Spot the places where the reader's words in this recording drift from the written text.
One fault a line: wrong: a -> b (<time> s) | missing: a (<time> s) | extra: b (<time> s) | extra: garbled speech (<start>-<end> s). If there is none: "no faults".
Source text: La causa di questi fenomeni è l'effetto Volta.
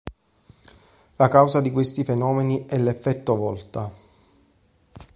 no faults